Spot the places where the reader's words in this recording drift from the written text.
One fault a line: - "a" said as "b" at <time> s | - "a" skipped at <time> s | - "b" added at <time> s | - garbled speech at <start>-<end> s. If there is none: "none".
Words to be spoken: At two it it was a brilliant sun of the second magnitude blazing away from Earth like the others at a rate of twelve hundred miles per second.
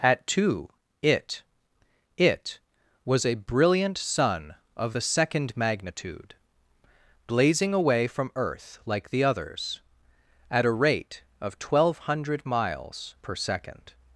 none